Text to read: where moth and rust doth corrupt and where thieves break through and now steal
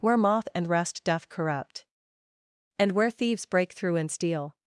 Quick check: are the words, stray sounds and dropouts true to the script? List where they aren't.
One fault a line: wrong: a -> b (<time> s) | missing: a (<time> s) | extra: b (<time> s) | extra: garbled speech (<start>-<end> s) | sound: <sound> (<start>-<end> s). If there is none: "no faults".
missing: now (4.1 s)